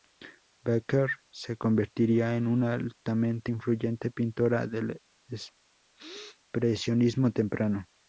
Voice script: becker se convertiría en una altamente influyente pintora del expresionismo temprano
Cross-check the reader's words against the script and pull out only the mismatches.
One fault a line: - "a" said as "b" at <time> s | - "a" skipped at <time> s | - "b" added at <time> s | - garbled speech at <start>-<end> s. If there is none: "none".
none